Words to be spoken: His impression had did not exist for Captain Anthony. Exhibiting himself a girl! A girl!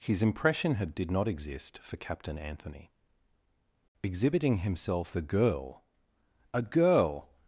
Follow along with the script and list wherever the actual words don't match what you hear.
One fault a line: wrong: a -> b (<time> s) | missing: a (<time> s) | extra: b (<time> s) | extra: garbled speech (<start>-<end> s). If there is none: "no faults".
no faults